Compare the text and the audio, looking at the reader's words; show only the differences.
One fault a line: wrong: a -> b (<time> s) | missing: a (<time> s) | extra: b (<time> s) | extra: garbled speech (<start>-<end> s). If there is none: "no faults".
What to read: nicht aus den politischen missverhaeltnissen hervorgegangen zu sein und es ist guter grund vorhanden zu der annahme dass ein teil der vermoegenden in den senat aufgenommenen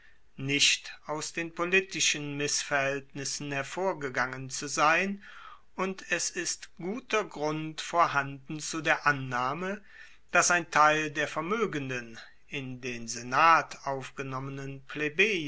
no faults